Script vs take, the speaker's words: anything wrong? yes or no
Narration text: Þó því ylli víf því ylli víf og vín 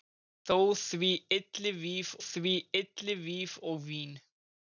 no